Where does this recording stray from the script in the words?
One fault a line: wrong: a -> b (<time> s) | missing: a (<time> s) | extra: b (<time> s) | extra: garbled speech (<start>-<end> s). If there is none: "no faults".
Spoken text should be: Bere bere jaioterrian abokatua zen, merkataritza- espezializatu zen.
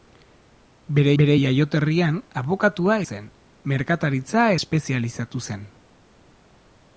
no faults